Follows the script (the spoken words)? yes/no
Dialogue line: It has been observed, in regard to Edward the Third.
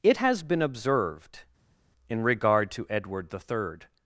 yes